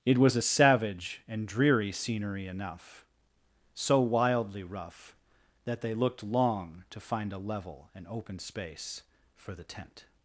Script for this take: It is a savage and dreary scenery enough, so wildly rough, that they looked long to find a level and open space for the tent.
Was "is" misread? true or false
true